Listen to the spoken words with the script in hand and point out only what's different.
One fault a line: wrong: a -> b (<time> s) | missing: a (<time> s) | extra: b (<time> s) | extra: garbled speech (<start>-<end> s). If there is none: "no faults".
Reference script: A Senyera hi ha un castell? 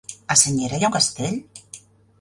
no faults